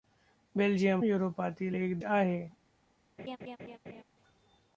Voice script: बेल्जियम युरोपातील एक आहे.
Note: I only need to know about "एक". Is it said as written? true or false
true